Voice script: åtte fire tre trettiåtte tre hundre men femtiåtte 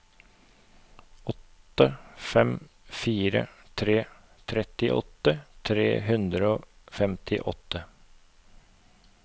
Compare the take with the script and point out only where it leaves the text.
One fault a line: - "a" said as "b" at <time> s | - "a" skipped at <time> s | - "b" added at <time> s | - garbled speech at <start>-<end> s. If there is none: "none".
- "fem" added at 2.2 s
- "men" said as "og" at 6.5 s